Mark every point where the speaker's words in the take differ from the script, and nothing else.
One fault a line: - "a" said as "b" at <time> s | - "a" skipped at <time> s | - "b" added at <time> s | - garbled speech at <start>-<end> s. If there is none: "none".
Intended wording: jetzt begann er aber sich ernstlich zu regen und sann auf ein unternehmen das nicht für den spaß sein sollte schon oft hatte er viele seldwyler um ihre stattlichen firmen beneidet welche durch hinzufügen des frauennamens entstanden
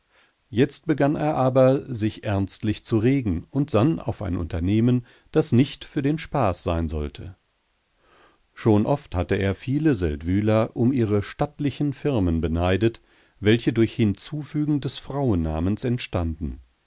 none